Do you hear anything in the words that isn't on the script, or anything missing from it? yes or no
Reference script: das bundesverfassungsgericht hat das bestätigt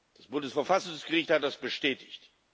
no